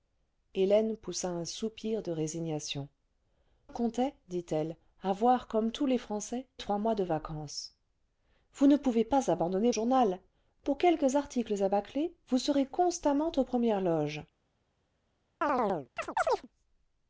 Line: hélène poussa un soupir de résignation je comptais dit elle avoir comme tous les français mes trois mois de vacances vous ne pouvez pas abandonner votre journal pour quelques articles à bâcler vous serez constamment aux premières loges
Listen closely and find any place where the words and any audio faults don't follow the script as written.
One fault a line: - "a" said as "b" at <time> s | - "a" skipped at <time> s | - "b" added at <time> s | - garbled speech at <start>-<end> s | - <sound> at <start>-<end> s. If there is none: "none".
- "je" skipped at 2.9 s
- "mes" skipped at 6.5 s
- "votre" skipped at 9.7 s
- chirp at 15.4-16.5 s